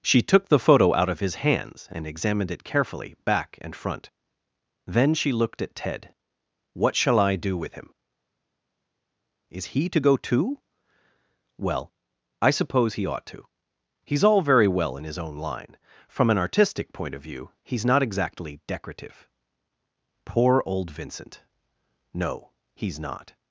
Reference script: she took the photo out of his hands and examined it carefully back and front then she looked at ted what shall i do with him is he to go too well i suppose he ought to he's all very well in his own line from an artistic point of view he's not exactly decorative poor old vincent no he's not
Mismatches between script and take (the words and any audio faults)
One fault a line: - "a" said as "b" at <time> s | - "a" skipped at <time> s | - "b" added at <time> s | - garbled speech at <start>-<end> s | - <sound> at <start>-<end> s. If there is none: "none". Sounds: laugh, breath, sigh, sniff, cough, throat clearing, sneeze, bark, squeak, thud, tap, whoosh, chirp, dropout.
none